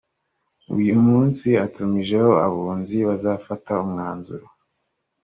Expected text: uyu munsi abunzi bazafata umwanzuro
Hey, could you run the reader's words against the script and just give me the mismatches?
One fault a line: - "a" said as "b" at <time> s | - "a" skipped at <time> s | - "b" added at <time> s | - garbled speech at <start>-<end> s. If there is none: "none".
- "atumijeho" added at 1.6 s